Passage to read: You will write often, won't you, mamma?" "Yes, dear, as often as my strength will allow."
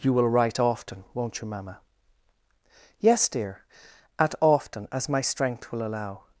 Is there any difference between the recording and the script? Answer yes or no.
yes